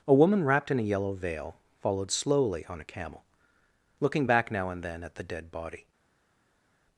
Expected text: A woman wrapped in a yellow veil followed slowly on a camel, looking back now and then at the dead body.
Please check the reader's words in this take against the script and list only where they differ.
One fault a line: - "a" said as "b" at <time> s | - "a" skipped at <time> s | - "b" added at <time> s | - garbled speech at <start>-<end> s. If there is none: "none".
none